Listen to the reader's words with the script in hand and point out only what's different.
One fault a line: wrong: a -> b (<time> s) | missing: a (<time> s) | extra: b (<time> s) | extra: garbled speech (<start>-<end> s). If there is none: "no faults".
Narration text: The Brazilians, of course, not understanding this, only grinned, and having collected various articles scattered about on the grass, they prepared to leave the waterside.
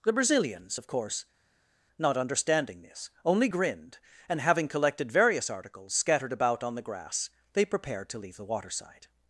no faults